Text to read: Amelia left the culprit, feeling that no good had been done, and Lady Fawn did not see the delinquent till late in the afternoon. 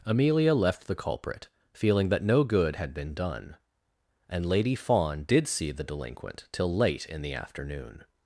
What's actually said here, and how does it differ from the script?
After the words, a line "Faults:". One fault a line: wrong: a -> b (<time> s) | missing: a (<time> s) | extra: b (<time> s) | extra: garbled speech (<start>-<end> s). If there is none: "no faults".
Amelia left the culprit, feeling that no good had been done, and Lady Fawn did see the delinquent till late in the afternoon.
Faults:
missing: not (5.5 s)